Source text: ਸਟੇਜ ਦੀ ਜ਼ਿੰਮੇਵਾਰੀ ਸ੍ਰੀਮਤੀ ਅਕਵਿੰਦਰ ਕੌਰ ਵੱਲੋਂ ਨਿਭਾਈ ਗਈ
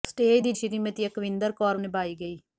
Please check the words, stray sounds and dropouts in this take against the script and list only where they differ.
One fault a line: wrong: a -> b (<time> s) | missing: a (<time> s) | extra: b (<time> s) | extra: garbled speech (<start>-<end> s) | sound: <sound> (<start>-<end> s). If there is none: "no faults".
missing: ਜ਼ਿੰਮੇਵਾਰੀ (0.5 s)
missing: ਵੱਲੋਂ (1.8 s)